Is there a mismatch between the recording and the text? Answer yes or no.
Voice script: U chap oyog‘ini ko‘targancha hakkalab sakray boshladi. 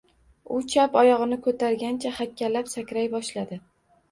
no